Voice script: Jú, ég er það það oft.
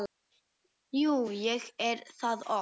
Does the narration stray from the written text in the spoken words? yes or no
yes